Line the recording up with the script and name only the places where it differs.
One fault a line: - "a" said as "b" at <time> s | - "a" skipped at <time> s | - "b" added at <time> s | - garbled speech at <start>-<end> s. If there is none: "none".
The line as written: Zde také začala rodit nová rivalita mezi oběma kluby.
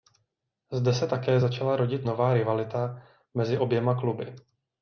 - "se" added at 0.9 s